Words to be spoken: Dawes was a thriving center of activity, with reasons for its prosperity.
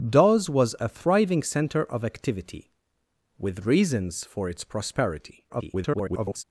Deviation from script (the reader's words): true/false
true